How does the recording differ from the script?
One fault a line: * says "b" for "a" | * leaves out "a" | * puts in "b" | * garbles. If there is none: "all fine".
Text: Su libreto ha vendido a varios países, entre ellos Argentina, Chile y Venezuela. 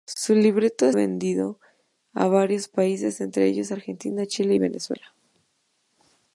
all fine